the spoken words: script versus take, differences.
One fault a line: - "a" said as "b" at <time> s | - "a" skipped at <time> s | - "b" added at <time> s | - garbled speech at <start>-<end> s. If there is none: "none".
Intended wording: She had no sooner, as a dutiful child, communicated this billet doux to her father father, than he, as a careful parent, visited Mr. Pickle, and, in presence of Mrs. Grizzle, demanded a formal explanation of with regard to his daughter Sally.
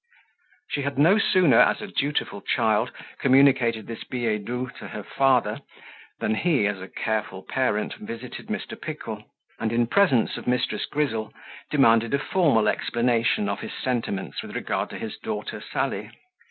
- "father" skipped at 5.6 s
- "his sentiments" added at 13.6 s